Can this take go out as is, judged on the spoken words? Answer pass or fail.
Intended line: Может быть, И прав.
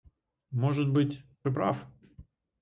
pass